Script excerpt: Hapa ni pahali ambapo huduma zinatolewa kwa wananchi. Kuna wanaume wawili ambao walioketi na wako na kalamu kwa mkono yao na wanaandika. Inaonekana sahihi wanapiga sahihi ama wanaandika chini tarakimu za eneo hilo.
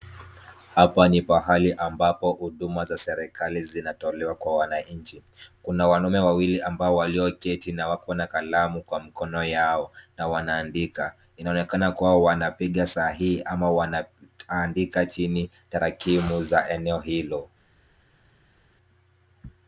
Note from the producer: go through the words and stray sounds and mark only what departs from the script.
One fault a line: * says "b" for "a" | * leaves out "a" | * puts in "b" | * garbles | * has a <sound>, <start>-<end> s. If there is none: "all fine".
* puts in "za serikali"
* says "kuwa" for "sahihi"